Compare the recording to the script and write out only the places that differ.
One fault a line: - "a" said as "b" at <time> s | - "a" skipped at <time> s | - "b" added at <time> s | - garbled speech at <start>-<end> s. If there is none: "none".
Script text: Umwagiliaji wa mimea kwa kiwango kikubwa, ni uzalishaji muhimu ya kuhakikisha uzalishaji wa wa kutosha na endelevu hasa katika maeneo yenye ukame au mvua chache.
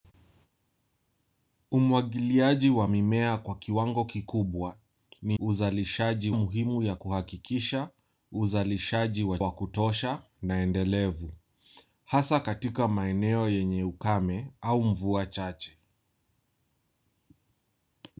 none